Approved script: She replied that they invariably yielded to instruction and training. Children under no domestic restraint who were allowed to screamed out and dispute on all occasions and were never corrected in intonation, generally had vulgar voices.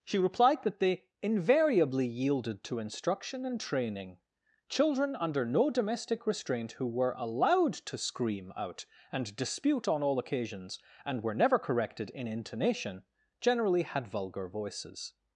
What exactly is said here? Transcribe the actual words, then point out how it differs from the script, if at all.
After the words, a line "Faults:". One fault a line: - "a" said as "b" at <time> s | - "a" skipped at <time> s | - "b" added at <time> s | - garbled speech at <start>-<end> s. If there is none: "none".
She replied that they invariably yielded to instruction and training. Children under no domestic restraint who were allowed to scream out and dispute on all occasions and were never corrected in intonation, generally had vulgar voices.
Faults:
- "screamed" said as "scream" at 8.0 s